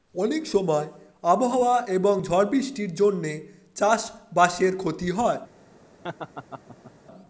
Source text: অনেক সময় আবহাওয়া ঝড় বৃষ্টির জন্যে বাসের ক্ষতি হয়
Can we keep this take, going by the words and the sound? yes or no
no